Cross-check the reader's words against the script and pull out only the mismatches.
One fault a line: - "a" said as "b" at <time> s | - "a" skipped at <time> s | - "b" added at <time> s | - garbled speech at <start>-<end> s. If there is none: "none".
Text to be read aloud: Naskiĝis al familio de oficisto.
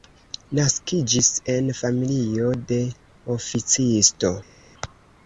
- "al" said as "en" at 1.5 s